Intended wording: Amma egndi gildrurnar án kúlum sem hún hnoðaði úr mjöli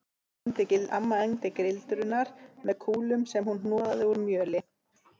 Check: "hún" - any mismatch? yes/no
no